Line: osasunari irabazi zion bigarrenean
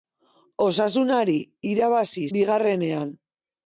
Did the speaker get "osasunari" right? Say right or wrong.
right